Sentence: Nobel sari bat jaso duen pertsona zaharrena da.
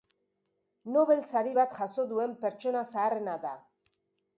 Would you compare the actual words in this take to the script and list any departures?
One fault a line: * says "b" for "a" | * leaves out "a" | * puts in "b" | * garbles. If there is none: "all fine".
all fine